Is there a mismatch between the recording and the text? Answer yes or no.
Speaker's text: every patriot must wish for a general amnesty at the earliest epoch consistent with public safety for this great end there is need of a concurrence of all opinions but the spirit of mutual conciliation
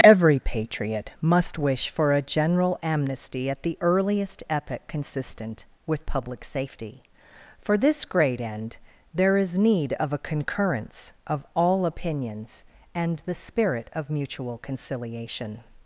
yes